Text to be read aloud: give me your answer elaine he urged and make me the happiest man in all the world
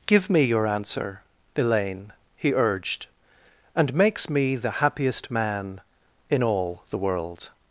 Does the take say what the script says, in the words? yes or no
no